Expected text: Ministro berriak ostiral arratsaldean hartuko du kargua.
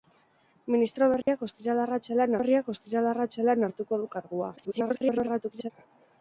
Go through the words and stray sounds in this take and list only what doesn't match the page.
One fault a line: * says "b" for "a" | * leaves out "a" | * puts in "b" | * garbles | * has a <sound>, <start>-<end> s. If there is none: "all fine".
* has a dropout, 1.2-1.3 s
* puts in "berriak ostiral arratsaldean"
* garbles